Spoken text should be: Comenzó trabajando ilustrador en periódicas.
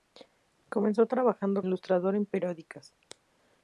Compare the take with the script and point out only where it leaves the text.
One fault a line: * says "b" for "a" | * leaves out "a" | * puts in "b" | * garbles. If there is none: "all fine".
all fine